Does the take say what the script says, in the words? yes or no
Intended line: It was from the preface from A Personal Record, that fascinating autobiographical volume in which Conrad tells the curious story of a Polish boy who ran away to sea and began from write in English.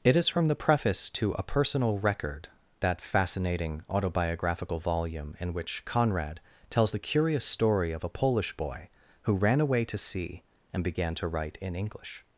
no